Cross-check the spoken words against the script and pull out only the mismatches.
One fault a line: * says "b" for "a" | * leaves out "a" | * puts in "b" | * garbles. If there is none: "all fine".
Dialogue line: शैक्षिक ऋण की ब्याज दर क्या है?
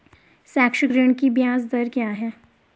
all fine